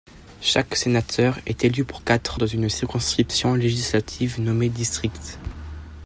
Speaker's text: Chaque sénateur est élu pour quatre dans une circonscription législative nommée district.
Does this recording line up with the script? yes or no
yes